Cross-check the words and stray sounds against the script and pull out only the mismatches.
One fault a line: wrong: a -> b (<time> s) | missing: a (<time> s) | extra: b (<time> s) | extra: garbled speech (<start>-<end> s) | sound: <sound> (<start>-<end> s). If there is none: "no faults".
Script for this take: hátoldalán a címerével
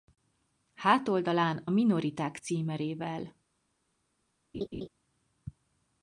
extra: minoriták (1.7 s)
sound: laugh (4.5-4.9 s)